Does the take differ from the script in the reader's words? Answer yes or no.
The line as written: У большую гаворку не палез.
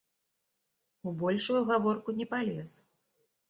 no